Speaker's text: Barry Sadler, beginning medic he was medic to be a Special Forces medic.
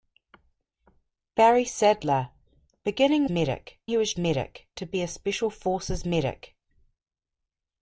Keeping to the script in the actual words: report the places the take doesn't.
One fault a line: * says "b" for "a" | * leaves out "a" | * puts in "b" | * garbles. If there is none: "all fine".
all fine